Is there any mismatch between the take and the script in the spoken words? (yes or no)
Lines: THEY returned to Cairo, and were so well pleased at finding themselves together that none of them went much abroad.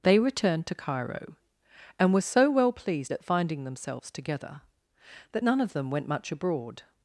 no